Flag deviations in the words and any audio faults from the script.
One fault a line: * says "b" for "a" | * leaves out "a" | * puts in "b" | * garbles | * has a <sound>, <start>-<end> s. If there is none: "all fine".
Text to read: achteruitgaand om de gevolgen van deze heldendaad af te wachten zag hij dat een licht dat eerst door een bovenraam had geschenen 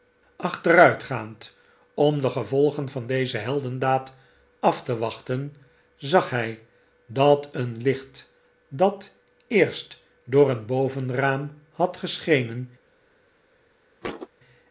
* has a thud, 14.0-14.3 s